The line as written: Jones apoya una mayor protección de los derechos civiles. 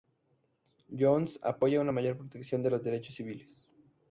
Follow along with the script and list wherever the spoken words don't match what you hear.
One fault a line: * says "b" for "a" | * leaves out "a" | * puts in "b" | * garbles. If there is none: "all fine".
all fine